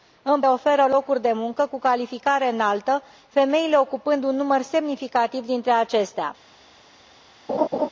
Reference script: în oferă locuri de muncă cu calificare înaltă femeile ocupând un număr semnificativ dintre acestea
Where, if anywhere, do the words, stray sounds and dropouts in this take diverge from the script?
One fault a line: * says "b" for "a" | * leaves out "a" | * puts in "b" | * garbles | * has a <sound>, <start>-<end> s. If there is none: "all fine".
* has a laugh, 7.5-7.9 s